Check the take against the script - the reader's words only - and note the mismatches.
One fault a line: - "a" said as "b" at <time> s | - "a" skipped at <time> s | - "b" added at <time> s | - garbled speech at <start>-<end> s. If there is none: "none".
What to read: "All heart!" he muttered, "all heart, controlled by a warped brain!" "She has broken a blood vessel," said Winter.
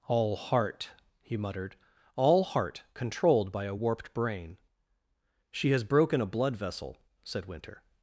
none